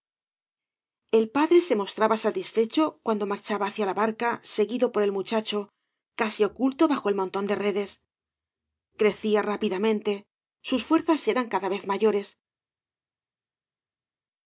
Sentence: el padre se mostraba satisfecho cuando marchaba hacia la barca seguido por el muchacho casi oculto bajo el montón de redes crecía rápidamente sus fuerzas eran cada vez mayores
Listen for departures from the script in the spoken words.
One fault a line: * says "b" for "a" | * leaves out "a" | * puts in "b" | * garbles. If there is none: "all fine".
all fine